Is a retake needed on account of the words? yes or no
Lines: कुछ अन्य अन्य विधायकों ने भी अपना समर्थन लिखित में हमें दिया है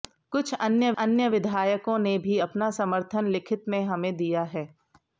no